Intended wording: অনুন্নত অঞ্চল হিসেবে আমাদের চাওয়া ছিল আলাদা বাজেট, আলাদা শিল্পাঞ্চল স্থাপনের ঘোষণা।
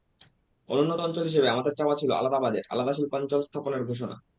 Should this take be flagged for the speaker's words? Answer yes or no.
no